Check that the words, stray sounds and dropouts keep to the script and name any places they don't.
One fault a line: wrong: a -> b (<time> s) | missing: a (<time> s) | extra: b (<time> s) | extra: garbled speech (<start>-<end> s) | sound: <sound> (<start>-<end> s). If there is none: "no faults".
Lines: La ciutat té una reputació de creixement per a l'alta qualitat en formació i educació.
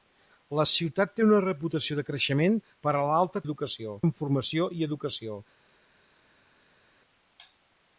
wrong: qualitat -> educació (3.5 s)